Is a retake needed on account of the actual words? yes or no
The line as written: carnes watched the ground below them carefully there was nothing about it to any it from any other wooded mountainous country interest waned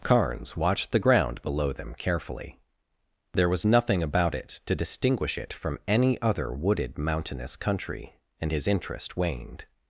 yes